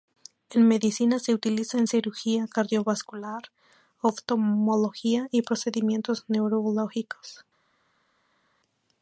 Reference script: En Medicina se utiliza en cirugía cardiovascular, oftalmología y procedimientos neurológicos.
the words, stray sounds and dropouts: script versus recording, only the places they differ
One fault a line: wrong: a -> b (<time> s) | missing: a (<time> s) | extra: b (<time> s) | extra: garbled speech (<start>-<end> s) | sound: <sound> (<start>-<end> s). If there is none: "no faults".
no faults